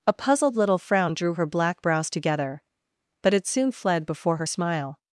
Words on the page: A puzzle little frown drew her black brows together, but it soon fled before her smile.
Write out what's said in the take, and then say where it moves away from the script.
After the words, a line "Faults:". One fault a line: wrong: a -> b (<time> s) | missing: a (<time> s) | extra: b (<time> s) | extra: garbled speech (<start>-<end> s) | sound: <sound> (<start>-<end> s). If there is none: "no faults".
A puzzled little frown drew her black brows together, but it soon fled before her smile.
Faults:
wrong: puzzle -> puzzled (0.1 s)